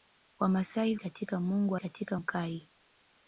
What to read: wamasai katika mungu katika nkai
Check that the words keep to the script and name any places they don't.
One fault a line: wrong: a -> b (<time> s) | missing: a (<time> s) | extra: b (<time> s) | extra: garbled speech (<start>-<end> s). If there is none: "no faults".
no faults